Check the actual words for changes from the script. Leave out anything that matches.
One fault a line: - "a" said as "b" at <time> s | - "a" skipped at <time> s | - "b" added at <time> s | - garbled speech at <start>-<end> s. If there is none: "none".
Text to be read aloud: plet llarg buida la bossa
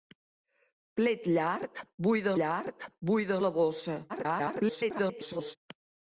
- "llarg buida" added at 2.4 s
- garbled speech at 4.1-5.6 s